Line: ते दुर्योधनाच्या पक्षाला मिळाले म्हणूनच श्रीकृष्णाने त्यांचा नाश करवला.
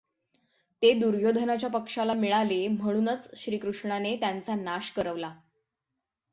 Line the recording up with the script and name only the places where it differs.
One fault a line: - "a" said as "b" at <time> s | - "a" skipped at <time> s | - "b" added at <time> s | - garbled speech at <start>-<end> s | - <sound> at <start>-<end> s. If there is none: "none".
none